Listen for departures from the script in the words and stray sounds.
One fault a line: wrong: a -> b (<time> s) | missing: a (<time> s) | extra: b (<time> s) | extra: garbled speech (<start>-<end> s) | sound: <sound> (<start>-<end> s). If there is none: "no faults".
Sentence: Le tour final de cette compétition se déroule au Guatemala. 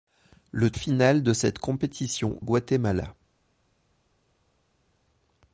missing: tour (0.7 s)
missing: se déroule au (2.4 s)